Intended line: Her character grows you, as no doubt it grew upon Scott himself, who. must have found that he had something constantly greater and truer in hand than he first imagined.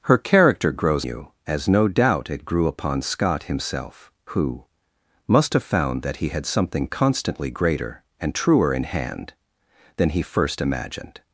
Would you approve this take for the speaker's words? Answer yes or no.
yes